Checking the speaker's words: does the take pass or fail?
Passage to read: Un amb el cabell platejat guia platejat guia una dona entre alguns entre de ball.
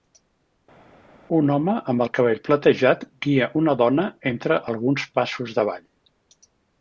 fail